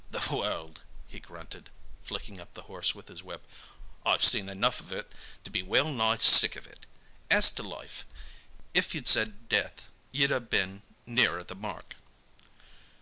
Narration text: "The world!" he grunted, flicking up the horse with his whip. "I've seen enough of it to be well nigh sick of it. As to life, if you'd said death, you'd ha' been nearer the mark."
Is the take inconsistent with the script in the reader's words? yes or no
no